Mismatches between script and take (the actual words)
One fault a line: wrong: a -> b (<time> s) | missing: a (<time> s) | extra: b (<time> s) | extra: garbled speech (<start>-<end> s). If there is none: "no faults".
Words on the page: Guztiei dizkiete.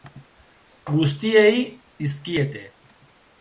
no faults